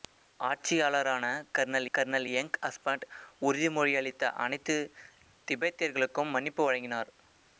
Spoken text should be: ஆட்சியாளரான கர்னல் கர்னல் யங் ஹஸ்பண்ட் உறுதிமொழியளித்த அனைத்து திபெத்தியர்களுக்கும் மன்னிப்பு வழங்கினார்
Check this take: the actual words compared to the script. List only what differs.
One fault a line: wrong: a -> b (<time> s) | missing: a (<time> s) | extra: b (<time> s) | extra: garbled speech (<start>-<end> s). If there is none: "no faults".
no faults